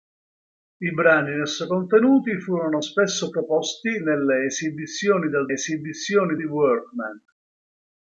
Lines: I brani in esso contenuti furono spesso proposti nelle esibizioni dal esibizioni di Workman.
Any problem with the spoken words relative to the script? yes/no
no